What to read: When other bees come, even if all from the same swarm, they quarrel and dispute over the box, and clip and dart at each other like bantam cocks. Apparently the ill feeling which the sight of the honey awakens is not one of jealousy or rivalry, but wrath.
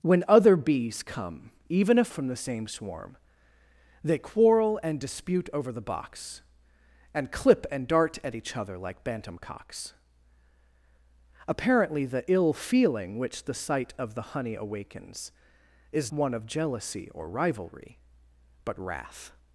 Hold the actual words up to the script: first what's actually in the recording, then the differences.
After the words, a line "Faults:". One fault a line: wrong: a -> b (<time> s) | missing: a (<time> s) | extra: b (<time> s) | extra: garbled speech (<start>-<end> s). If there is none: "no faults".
When other bees come, even if from the same swarm, they quarrel and dispute over the box, and clip and dart at each other like bantam cocks. Apparently the ill feeling which the sight of the honey awakens is one of jealousy or rivalry, but wrath.
Faults:
missing: all (2.1 s)
missing: not (16.1 s)